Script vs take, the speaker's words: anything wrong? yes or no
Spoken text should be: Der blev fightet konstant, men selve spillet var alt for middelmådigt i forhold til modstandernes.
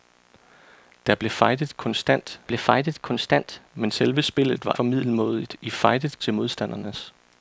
yes